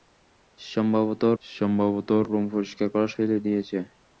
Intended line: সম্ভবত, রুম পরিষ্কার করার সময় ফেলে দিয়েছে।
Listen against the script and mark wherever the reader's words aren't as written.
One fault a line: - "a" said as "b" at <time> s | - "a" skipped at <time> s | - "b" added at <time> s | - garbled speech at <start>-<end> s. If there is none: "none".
- "সম্ভবত" added at 1.4 s
- "সময়" skipped at 3.1 s